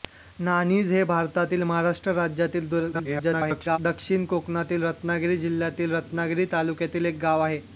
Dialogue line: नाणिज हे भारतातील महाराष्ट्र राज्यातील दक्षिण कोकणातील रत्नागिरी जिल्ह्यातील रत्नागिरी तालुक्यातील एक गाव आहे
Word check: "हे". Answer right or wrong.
right